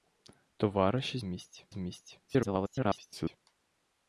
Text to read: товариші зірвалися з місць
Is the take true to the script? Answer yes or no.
no